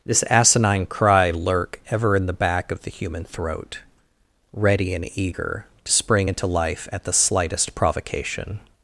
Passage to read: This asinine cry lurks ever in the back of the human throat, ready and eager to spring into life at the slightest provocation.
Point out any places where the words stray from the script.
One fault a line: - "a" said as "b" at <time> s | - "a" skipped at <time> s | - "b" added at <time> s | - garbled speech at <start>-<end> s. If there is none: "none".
- "lurks" said as "lurk" at 1.3 s